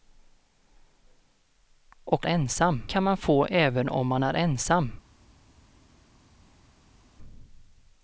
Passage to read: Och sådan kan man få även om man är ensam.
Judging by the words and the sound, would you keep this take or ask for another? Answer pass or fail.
fail